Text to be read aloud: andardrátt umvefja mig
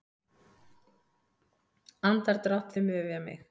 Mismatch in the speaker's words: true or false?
false